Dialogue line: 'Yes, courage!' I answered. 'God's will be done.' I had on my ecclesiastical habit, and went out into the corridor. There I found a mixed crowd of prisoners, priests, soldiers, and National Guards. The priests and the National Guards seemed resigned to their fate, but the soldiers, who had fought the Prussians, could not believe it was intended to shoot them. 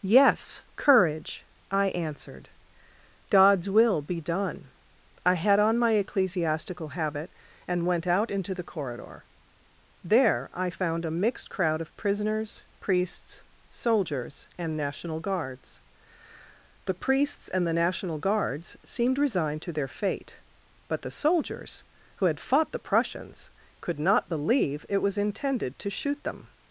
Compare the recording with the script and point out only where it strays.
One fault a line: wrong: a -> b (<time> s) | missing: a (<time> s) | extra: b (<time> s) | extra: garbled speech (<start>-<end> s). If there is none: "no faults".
no faults